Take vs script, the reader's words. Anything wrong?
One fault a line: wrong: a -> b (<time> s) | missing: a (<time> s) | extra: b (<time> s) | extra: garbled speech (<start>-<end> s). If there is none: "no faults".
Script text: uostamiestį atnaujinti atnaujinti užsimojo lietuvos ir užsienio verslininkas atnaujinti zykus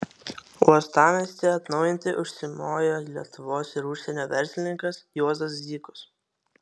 missing: atnaujinti (2.1 s)
wrong: atnaujinti -> juozas (5.2 s)